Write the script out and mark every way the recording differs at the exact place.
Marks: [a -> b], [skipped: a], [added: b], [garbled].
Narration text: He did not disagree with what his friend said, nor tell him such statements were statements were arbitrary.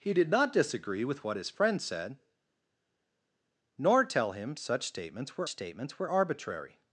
He did not disagree with what his friend said, nor tell him such statements were statements were arbitrary.